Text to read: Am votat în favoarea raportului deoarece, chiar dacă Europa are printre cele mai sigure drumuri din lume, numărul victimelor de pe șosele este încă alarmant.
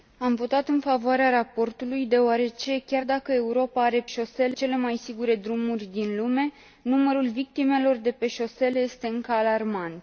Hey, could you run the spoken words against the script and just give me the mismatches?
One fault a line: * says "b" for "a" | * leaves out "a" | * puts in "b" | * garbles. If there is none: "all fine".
* says "șosele" for "printre"